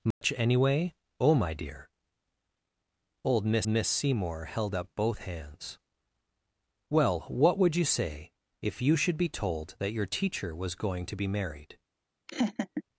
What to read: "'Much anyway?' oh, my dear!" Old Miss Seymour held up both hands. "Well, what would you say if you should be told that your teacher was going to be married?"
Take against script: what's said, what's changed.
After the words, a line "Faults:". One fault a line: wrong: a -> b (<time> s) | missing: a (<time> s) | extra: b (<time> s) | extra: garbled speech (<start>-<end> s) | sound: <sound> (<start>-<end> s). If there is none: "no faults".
"'Much anyway?' oh, my dear!" Old Miss Miss Seymour held up both hands. "Well, what would you say if you should be told that your teacher was going to be married?"
Faults:
sound: dropout (0.1-0.2 s)
extra: Miss (3.7 s)
sound: laugh (12.3-12.8 s)